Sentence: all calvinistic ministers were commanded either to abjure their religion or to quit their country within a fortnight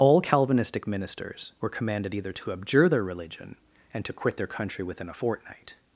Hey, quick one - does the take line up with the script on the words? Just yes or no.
no